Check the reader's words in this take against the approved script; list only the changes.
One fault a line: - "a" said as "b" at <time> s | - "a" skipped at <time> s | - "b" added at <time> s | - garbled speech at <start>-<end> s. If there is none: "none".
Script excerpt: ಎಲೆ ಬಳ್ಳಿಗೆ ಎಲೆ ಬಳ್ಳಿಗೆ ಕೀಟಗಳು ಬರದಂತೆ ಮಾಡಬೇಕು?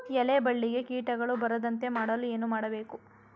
- "ಎಲೆ ಬಳ್ಳಿಗೆ ಕೀಟಗಳು ಬರದಂತೆ" said as "ಕೀಟಗಳು ಬರದಂತೆ ಮಾಡಲು ಏನು" at 0.8 s